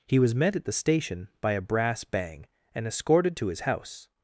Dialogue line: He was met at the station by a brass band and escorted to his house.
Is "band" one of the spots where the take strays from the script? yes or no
yes